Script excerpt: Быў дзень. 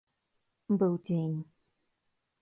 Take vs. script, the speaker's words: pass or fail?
pass